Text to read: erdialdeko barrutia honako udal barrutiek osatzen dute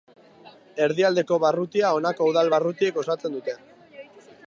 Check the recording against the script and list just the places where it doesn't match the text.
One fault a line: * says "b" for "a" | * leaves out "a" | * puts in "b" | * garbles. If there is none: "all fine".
all fine